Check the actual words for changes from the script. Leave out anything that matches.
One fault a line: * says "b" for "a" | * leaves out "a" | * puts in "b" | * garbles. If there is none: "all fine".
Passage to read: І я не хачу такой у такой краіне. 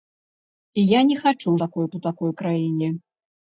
all fine